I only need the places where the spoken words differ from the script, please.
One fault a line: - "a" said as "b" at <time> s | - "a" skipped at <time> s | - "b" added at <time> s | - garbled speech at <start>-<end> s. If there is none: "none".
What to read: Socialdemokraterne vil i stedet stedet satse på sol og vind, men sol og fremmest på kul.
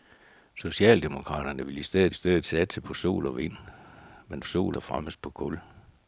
none